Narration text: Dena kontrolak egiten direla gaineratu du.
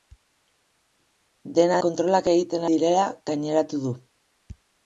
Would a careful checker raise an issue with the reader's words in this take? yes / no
no